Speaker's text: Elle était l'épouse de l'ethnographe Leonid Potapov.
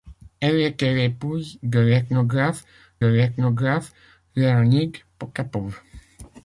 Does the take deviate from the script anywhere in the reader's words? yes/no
yes